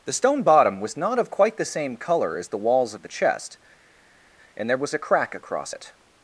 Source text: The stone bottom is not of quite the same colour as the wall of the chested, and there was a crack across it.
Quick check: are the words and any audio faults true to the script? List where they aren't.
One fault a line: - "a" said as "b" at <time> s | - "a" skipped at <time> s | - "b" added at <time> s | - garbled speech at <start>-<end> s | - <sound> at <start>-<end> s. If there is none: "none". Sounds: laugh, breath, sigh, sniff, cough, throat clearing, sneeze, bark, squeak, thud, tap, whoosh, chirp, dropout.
- "is" said as "was" at 0.8 s
- "wall" said as "walls" at 2.6 s
- "chested" said as "chest" at 3.1 s